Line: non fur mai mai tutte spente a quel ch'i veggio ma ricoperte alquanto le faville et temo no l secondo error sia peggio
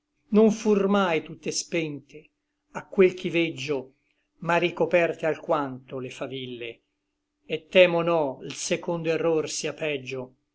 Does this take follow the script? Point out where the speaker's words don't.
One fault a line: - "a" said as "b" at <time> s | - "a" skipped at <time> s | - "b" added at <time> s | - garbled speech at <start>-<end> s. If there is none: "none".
- "mai" skipped at 1.2 s